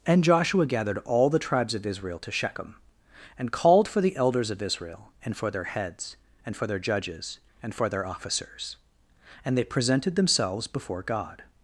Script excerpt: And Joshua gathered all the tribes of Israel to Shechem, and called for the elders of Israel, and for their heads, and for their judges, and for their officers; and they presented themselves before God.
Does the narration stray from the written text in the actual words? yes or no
no